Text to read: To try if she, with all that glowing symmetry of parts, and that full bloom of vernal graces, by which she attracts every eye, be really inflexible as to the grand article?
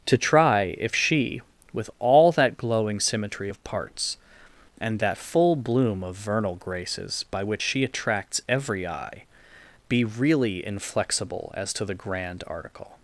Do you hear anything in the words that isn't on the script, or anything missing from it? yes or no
no